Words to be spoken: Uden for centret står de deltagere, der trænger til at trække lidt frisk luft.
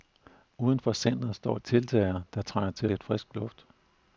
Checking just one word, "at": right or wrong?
wrong